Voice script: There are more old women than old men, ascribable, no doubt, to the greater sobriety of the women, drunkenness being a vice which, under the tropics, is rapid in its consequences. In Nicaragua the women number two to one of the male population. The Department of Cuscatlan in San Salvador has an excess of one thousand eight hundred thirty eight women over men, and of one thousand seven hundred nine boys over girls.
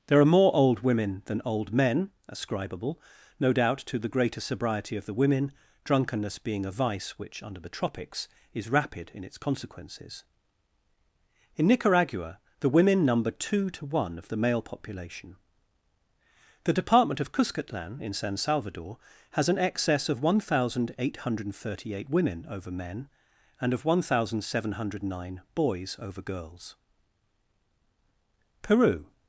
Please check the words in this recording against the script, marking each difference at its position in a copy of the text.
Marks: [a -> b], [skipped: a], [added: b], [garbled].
There are more old women than old men, ascribable, no doubt, to the greater sobriety of the women, drunkenness being a vice which, under the tropics, is rapid in its consequences. In Nicaragua the women number two to one of the male population. The Department of Cuscatlan in San Salvador has an excess of one thousand eight hundred thirty eight women over men, and of one thousand seven hundred nine boys over girls. [added: Peru]